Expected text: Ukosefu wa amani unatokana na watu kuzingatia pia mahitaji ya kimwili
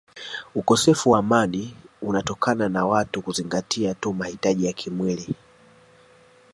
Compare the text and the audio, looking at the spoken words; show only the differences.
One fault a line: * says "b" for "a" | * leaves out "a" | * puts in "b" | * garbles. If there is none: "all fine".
* says "tu" for "pia"